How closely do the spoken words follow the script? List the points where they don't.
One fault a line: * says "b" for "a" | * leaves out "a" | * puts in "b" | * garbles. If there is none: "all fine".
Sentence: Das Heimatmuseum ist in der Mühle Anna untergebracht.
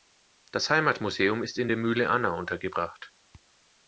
all fine